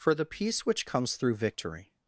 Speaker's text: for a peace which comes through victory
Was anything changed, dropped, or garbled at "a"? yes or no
yes